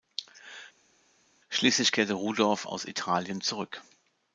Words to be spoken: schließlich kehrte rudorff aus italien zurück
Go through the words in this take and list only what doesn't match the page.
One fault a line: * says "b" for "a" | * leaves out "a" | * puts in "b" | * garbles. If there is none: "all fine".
all fine